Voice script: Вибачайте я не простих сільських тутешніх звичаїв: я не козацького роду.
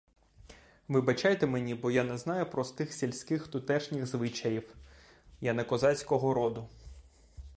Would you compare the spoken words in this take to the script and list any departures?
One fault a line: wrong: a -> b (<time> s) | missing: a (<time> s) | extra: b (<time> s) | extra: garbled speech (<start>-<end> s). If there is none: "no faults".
extra: мені бо (1.5 s)
extra: знаю (2.2 s)